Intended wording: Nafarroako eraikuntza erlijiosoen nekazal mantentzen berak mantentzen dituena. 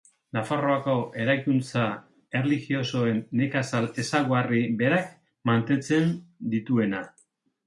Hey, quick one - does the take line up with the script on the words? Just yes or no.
no